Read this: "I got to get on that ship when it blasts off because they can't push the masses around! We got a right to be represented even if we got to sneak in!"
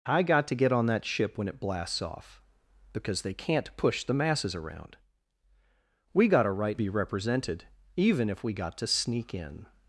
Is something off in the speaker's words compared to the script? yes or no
yes